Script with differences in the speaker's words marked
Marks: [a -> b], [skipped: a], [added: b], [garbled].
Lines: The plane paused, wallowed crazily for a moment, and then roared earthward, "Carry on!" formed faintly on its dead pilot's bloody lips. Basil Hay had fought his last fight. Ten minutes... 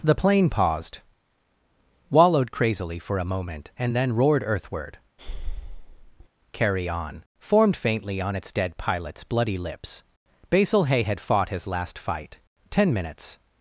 The plane paused, wallowed crazily for a moment, and then roared earthward, "Carry on!" formed faintly on its dead pilot's bloody lips. Basil Hay had fought his last fight. Ten minutes...